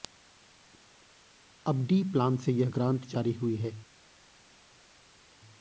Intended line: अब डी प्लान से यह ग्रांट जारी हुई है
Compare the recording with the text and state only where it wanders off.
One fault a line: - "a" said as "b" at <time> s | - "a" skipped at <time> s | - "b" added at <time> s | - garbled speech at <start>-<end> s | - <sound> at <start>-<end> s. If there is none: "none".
none